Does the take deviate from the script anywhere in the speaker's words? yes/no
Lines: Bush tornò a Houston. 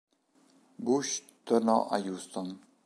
no